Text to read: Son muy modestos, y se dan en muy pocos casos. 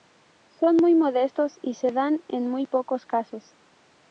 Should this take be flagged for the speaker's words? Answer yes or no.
no